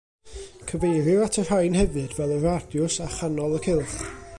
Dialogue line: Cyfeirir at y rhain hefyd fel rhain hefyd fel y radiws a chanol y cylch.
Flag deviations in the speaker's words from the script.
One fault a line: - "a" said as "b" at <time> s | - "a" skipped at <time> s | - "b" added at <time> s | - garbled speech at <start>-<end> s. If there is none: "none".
- "rhain hefyd fel" skipped at 2.4 s